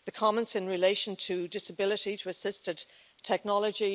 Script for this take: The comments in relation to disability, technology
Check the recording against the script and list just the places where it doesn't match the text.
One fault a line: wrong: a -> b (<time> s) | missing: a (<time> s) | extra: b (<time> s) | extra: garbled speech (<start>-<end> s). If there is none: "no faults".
extra: to assisted (2.1 s)